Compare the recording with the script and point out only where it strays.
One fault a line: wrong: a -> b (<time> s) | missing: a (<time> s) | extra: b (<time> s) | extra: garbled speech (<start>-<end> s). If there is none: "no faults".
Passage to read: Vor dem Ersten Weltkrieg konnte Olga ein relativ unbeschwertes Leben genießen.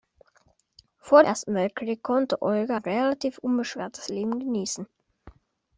missing: dem (1.2 s)
missing: ein (2.8 s)